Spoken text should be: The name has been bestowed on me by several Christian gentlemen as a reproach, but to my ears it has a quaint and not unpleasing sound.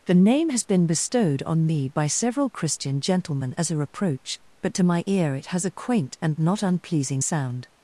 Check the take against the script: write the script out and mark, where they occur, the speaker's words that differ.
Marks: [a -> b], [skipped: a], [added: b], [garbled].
The name has been bestowed on me by several Christian gentlemen as a reproach, but to my [ears -> ear] it has a quaint and not unpleasing sound.